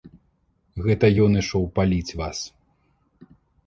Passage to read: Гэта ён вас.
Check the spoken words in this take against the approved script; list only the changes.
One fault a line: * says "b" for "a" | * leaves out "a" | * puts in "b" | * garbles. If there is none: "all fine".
* puts in "ішоў паліць"